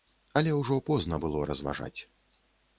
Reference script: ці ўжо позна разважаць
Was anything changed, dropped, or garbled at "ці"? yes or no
yes